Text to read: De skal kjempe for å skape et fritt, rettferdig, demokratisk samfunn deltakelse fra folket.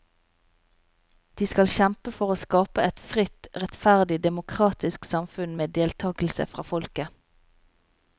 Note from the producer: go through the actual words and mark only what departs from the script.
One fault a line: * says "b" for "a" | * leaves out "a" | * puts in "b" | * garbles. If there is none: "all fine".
* puts in "med"